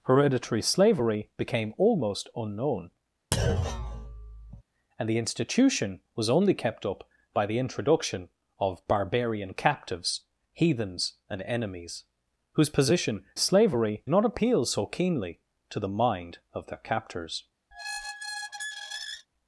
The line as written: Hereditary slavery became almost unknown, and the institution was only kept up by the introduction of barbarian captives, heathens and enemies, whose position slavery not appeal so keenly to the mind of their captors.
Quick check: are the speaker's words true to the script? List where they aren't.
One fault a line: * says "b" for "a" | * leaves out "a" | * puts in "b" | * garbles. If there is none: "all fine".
all fine